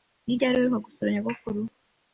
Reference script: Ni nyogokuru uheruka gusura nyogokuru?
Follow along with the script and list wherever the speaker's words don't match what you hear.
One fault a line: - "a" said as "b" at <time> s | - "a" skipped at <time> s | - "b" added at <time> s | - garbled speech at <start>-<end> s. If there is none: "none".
- "nyogokuru" said as "ryari" at 0.4 s